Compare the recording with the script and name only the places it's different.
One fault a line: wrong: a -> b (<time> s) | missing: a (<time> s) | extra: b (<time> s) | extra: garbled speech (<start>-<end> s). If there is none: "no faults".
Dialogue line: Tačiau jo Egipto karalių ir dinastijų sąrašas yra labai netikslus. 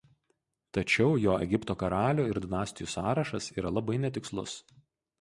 no faults